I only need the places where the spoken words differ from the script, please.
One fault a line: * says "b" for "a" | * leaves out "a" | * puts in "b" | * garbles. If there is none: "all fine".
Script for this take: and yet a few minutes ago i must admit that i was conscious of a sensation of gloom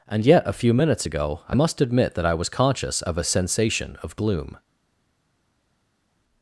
all fine